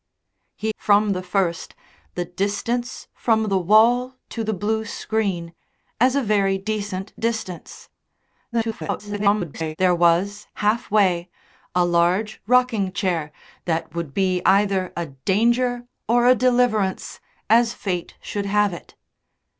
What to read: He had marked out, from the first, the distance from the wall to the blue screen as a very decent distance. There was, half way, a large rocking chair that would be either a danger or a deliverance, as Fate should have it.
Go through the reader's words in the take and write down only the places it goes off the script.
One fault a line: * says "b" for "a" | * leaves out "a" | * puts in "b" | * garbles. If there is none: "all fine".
* leaves out "had marked out"
* garbles